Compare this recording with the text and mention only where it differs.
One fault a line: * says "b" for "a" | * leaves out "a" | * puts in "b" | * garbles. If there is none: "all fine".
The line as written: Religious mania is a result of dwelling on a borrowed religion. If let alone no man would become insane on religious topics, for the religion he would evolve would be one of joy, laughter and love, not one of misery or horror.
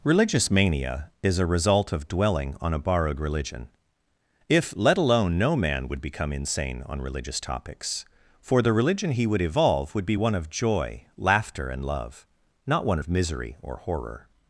all fine